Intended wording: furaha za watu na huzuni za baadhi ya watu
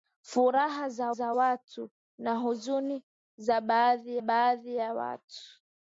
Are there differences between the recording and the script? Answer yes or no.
yes